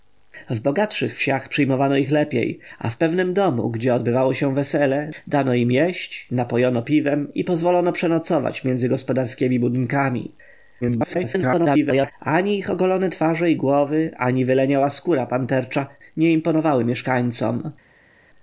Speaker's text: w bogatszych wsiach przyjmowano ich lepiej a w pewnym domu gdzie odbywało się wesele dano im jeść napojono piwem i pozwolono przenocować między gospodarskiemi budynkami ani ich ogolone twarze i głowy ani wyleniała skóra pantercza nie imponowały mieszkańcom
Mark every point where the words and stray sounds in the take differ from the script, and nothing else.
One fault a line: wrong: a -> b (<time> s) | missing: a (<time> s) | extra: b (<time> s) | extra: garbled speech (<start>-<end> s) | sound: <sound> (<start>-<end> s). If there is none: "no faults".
extra: garbled speech (10.8-12.1 s)